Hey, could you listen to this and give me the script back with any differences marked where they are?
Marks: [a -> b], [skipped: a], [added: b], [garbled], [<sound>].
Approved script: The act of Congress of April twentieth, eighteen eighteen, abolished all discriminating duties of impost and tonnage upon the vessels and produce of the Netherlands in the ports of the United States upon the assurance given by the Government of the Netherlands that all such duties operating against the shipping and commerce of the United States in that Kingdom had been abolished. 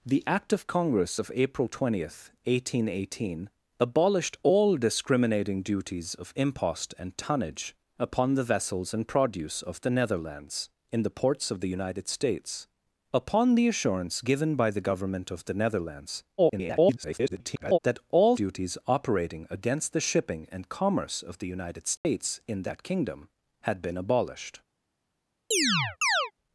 The act of Congress of April twentieth, eighteen eighteen, abolished all discriminating duties of impost and tonnage upon the vessels and produce of the Netherlands in the ports of the United States upon the assurance given by the Government of the Netherlands [garbled] that all [skipped: such] duties operating against the shipping and commerce of the United States [dropout] in that Kingdom had been abolished. [chirp]